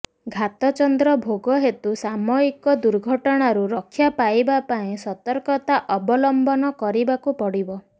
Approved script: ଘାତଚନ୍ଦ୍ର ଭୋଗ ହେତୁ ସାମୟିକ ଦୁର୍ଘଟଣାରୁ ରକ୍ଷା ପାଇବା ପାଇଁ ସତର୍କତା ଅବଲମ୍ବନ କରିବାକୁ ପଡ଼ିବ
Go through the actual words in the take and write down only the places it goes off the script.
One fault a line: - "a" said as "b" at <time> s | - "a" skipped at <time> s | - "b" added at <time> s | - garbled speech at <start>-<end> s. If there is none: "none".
none